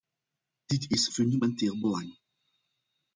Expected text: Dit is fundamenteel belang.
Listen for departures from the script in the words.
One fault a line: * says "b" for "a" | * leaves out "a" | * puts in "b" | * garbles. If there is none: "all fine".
all fine